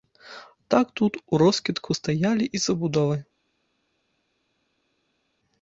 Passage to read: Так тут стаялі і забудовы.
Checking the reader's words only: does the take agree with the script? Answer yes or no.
no